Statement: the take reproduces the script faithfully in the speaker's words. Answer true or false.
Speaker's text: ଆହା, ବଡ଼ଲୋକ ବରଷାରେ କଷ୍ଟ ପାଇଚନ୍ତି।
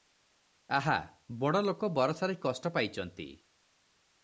true